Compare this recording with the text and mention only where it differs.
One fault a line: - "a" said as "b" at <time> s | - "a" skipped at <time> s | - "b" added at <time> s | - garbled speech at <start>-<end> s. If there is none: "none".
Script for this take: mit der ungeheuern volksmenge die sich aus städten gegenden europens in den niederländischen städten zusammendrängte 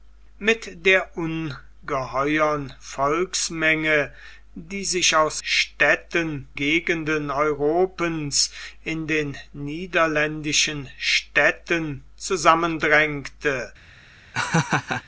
none